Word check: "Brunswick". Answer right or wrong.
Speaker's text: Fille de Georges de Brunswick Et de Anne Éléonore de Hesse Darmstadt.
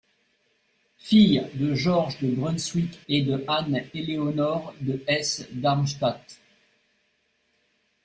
right